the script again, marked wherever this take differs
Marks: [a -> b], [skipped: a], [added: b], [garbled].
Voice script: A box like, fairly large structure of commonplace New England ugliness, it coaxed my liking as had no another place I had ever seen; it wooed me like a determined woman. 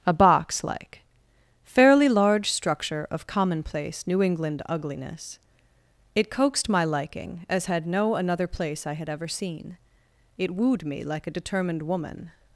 A box like, fairly large structure of commonplace New England ugliness, it coaxed my liking as had no another place I had ever seen; it wooed me like a determined woman.